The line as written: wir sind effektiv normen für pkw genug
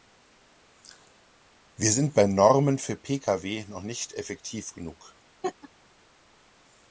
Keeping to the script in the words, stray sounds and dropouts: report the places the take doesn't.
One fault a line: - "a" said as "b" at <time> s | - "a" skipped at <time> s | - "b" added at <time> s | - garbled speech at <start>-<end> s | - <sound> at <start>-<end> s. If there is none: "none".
- "effektiv" said as "bei" at 2.1 s
- "noch nicht effektiv" added at 3.7 s
- laugh at 5.4-5.7 s